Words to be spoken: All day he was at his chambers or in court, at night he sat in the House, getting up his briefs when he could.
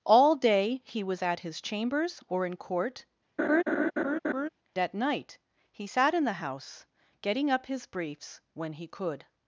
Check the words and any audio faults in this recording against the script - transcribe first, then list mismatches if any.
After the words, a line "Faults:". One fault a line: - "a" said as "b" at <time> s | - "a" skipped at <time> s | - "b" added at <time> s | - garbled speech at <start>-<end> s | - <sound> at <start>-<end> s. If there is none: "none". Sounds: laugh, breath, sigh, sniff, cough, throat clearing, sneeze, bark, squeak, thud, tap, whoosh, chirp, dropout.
All day he was at his chambers or in court, at night he sat in the House, getting up his briefs when he could.
Faults:
- laugh at 3.4-4.5 s